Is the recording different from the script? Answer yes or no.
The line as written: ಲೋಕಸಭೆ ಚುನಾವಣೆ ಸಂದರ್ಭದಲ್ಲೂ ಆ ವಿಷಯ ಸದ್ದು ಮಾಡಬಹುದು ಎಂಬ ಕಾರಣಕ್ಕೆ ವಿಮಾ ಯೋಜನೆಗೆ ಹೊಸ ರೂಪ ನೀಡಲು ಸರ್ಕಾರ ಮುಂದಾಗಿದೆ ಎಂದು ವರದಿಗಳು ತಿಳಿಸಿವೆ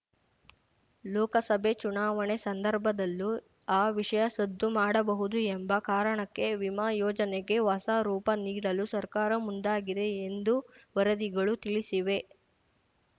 no